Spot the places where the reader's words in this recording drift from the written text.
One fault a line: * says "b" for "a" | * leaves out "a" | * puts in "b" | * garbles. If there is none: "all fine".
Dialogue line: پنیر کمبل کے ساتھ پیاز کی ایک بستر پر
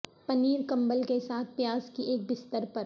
all fine